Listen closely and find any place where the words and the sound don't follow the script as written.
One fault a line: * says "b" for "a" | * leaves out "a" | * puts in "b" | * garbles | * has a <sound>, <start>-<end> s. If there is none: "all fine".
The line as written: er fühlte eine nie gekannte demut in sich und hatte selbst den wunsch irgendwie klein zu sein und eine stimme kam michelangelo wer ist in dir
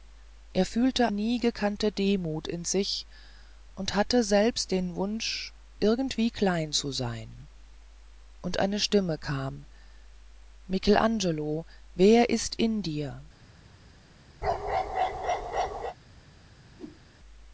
* leaves out "eine"
* has a bark, 14.4-16.0 s
* has a whoosh, 16.8-17.0 s